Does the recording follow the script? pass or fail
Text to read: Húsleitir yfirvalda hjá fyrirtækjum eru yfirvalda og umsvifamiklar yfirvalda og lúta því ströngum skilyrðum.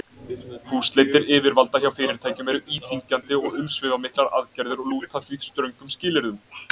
fail